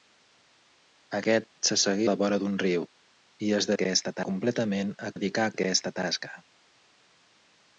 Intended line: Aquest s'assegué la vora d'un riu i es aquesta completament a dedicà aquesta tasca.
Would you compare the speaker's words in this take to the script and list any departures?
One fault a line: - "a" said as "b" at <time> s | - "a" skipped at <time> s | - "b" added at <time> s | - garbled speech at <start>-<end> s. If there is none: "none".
none